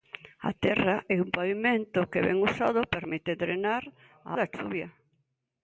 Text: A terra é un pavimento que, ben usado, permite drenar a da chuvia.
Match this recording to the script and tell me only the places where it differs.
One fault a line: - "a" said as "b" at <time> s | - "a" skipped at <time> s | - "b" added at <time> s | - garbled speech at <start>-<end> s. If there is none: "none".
none